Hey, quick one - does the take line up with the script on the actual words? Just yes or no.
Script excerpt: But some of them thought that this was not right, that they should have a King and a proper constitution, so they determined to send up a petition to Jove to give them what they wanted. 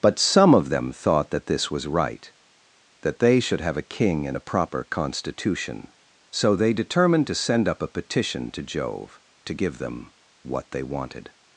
no